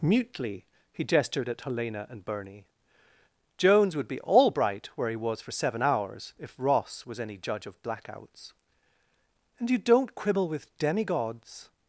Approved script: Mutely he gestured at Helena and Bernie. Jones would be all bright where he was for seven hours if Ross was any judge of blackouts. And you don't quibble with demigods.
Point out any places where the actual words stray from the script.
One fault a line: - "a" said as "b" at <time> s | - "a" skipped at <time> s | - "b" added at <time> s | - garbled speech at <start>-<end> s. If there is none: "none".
none